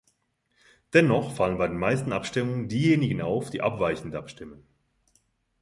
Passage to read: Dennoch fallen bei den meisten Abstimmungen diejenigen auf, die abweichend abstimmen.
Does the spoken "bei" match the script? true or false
true